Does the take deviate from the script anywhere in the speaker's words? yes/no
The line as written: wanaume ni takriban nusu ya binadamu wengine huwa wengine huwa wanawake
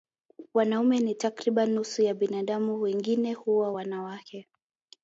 yes